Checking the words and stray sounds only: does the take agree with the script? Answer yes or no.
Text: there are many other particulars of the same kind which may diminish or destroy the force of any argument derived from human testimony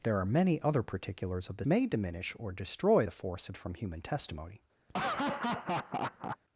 no